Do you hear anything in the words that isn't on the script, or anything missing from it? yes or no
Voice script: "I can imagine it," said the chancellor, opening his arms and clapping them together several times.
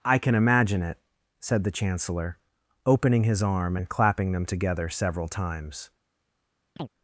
yes